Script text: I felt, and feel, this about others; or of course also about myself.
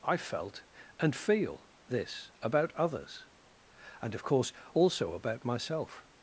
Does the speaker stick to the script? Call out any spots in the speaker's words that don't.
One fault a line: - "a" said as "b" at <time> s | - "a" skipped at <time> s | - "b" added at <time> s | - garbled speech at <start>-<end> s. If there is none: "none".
- "or" said as "and" at 4.0 s